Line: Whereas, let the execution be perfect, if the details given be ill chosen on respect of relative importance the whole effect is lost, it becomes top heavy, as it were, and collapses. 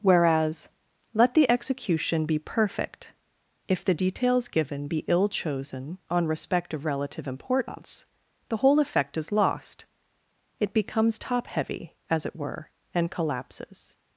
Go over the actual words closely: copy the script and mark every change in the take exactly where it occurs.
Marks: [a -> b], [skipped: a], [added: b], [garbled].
Whereas, let the execution be perfect, if the details given be ill chosen on respect of relative importance the whole effect is lost, it becomes top heavy, as it were, and collapses.